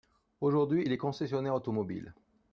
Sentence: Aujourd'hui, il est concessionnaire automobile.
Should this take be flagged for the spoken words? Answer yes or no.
no